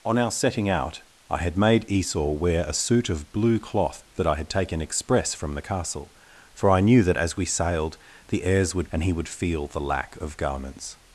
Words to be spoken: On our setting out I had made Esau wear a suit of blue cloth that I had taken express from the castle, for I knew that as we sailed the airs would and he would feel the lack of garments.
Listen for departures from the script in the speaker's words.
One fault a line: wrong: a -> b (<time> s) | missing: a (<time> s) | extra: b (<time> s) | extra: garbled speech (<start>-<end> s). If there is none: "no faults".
no faults